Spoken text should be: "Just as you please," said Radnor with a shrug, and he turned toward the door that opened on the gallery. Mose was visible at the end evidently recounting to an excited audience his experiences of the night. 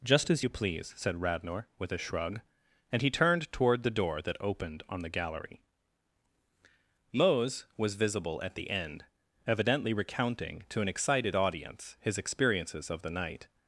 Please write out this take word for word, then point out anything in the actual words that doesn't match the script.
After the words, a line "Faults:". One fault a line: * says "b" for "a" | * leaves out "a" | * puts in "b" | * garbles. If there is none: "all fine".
"Just as you please," said Radnor with a shrug, and he turned toward the door that opened on the gallery. Mose was visible at the end evidently recounting to an excited audience his experiences of the night.
Faults:
all fine